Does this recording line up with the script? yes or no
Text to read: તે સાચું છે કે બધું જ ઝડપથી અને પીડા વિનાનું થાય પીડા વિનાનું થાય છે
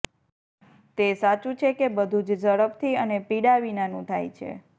no